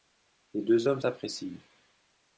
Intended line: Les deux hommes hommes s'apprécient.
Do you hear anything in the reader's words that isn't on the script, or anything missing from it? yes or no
yes